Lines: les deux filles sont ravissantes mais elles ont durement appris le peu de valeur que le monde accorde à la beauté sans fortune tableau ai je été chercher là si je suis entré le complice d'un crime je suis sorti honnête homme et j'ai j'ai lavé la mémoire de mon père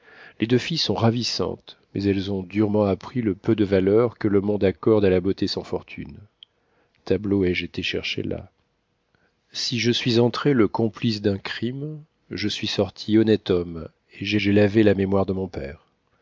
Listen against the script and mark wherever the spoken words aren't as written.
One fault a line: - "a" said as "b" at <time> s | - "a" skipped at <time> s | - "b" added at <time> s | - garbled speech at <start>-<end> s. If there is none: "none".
none